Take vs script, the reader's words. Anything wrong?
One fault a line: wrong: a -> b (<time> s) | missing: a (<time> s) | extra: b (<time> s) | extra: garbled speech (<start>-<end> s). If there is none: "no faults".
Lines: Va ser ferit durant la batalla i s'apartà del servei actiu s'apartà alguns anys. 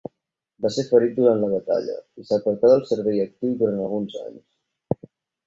wrong: s'apartà -> durant (3.6 s)